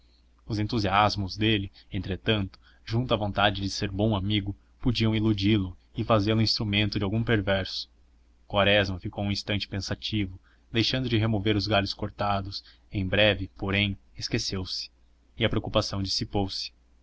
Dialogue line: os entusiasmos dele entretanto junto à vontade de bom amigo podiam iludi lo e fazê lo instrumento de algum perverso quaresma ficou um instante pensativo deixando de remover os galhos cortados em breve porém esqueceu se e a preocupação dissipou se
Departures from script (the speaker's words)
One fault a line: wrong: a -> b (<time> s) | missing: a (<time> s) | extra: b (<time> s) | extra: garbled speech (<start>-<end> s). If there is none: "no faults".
extra: ser (3.7 s)